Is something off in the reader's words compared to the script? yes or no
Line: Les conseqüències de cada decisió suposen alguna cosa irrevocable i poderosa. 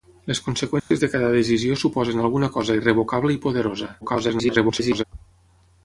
yes